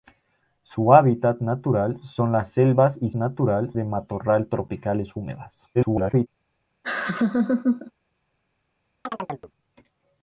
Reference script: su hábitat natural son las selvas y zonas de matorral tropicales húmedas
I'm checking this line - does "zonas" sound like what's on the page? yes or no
no